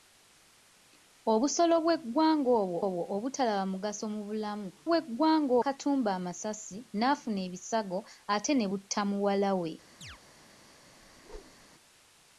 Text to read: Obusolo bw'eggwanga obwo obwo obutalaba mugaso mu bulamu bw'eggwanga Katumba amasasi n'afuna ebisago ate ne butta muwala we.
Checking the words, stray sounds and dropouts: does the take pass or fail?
fail